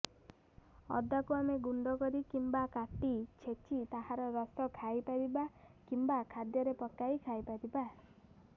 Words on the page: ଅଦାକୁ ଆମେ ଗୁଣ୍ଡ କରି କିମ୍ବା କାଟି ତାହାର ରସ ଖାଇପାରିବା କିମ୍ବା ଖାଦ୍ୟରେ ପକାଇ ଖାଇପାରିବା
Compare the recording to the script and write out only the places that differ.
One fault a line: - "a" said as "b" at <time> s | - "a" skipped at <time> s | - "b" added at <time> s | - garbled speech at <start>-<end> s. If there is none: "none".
- "ଛେଚି" added at 3.4 s